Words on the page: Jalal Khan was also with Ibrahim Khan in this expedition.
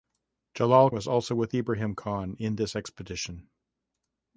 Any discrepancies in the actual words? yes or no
yes